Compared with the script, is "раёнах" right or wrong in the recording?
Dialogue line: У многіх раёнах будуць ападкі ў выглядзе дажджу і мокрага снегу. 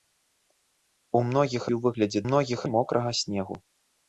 wrong